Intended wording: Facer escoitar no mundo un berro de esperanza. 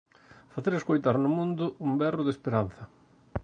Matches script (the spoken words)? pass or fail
pass